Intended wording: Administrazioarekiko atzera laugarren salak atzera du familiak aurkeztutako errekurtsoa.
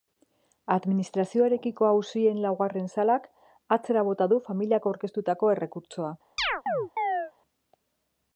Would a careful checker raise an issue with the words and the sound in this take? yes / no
yes